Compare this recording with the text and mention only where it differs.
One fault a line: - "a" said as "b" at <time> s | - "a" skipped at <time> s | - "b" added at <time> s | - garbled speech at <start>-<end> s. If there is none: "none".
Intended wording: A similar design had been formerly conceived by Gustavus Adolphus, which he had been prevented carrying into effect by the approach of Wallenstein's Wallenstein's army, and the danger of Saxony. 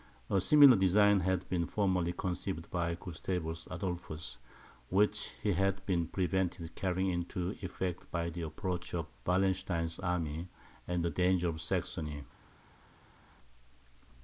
- "Wallenstein's" skipped at 10.0 s